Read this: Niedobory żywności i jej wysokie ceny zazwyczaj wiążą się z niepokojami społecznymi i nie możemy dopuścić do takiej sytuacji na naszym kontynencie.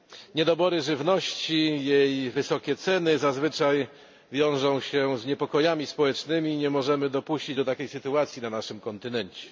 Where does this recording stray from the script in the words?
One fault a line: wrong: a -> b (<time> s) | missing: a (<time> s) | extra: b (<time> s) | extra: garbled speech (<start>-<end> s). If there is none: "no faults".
no faults